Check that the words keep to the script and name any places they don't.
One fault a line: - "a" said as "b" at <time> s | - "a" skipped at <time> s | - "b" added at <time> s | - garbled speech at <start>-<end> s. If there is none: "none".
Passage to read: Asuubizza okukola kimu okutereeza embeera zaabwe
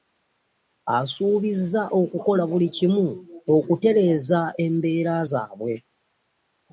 - "buli" added at 2.5 s